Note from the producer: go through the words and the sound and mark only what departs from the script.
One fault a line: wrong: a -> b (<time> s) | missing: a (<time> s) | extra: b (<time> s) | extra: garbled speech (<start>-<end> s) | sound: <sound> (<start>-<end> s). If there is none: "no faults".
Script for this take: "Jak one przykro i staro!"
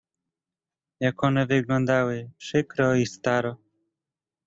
extra: wyglądały (1.5 s)